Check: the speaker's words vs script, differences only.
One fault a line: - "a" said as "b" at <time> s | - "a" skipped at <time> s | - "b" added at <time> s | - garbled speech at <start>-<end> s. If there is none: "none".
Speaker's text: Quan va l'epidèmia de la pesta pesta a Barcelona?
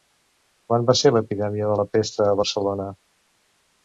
- "ser" added at 1.0 s
- "pesta" skipped at 2.3 s